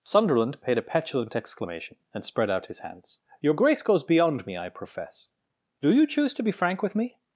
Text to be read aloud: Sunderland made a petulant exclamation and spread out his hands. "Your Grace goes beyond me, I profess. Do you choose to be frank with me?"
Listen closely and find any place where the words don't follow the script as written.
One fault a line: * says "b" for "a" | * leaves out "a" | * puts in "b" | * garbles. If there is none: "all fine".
* says "paid" for "made"